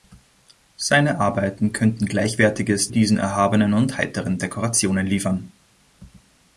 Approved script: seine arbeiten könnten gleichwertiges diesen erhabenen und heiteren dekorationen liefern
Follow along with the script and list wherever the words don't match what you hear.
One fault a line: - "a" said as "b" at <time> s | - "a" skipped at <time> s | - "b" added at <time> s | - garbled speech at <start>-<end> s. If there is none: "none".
none